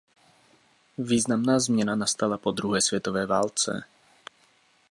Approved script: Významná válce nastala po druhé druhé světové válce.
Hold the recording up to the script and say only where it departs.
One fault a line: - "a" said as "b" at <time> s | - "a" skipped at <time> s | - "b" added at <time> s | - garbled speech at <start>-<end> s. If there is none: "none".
- "válce" said as "změna" at 1.6 s
- "druhé" skipped at 2.8 s